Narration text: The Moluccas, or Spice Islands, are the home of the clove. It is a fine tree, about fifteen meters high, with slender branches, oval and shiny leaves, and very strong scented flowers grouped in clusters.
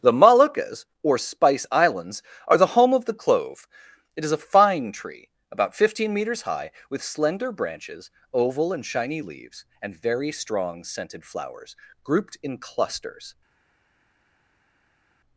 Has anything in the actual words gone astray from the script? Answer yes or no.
no